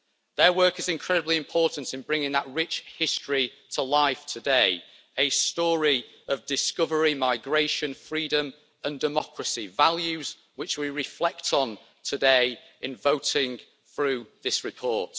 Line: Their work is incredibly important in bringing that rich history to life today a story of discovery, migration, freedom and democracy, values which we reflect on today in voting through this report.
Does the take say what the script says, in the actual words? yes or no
yes